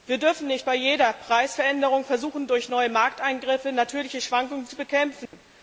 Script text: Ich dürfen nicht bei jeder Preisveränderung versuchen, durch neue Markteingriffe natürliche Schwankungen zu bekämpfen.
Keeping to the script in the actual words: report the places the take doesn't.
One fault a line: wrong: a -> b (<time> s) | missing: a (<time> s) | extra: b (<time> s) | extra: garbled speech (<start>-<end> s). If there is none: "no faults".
wrong: Ich -> Wir (0.1 s)